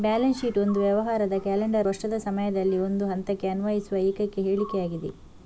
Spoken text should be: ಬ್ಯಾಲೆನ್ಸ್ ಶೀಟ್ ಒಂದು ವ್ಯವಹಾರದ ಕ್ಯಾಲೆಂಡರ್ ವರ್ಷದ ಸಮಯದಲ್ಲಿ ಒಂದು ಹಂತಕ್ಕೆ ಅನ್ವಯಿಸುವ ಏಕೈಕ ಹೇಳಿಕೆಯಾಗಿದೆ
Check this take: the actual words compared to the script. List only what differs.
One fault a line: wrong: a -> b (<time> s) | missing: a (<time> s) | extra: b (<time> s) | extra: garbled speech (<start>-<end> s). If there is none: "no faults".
no faults